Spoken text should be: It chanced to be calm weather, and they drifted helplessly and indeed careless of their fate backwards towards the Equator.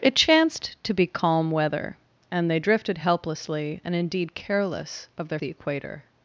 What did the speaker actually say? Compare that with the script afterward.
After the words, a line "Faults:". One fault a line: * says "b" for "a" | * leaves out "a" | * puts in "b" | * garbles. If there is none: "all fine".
It chanced to be calm weather, and they drifted helplessly and indeed careless of their the Equator.
Faults:
* leaves out "fate backwards towards"